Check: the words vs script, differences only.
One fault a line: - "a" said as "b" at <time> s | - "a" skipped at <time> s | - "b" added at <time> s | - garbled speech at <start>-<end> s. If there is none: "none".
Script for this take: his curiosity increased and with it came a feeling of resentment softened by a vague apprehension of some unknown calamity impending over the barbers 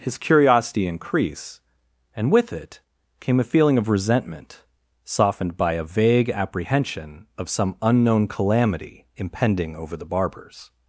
- "increased" said as "increase" at 0.9 s